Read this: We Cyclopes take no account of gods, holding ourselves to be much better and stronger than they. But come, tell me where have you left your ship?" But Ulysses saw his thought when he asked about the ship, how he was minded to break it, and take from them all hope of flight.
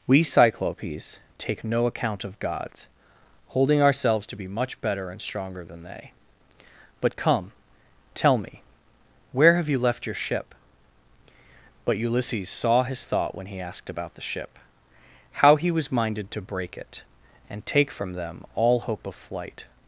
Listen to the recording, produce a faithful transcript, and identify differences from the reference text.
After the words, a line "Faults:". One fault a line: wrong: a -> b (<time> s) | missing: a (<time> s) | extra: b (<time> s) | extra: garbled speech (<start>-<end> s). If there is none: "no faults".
We Cyclopes take no account of gods, holding ourselves to be much better and stronger than they. But come, tell me where have you left your ship?" But Ulysses saw his thought when he asked about the ship, how he was minded to break it, and take from them all hope of flight.
Faults:
no faults